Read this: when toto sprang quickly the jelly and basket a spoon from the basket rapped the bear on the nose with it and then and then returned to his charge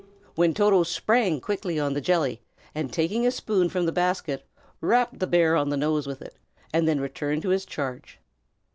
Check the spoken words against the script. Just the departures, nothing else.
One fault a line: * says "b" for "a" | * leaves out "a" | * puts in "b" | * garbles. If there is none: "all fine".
* puts in "on"
* says "taking" for "basket"
* leaves out "and then"